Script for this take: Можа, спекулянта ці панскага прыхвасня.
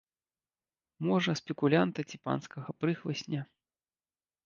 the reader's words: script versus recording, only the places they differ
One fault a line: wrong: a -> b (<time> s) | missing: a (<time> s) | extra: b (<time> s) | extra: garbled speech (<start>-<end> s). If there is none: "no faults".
no faults